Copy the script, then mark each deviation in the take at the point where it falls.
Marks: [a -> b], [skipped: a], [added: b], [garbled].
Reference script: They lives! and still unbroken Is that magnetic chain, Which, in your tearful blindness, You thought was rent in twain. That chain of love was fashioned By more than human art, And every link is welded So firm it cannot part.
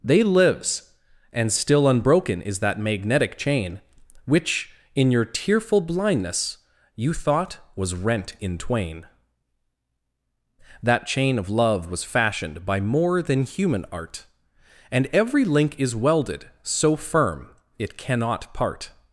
They lives! and still unbroken Is that magnetic chain, Which, in your tearful blindness, You thought was rent in twain. That chain of love was fashioned By more than human art, And every link is welded So firm it cannot part.